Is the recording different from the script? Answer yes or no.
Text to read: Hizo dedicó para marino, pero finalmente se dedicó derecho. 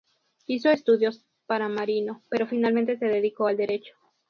yes